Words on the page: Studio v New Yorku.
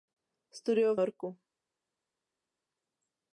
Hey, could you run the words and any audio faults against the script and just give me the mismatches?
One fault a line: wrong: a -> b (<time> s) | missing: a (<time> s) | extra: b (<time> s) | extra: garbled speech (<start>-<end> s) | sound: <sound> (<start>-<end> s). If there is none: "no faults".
missing: New (1.0 s)